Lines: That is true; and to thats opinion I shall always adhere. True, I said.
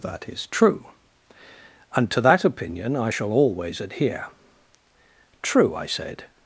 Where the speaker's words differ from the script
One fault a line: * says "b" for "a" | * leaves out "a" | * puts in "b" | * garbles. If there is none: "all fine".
* says "that" for "thats"